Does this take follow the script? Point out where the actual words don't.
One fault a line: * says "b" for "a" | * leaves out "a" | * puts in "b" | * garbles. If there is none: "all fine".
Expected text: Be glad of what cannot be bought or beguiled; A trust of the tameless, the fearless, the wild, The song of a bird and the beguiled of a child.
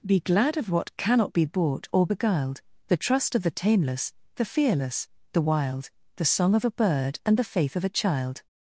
* says "The" for "A"
* says "faith" for "beguiled"